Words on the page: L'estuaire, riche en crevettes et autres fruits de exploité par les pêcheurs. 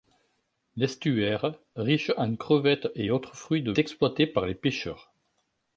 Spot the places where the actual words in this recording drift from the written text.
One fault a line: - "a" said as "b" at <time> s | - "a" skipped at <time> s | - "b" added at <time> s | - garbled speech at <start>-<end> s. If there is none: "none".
none